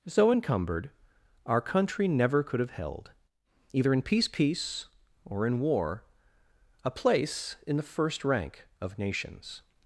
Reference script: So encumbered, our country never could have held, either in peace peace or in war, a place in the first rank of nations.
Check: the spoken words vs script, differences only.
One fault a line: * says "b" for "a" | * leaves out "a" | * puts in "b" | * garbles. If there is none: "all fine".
all fine